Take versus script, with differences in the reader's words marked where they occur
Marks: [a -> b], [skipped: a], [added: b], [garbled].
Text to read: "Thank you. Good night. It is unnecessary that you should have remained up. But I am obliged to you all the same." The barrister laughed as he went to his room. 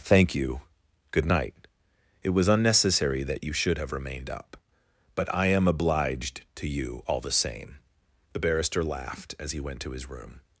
"Thank you. Good night. It [is -> was] unnecessary that you should have remained up. But I am obliged to you all the same." The barrister laughed as he went to his room.